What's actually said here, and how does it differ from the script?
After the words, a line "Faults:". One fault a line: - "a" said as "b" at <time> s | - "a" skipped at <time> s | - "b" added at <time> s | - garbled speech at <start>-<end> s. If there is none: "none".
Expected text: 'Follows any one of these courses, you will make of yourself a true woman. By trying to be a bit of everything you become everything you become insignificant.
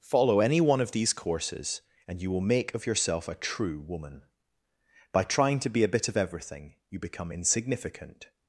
'Follow any one of these courses, and you will make of yourself a true woman. By trying to be a bit of everything you become insignificant.
Faults:
- "Follows" said as "Follow" at 0.0 s
- "and" added at 2.1 s
- "everything you become" skipped at 7.3 s